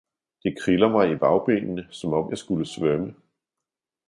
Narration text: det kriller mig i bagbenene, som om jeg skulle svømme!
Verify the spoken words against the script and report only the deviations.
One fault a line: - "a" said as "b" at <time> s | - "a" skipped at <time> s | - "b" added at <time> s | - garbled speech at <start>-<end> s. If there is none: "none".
none